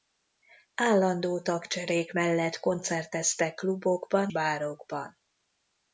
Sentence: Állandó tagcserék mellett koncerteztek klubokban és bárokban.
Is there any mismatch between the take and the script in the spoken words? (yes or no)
yes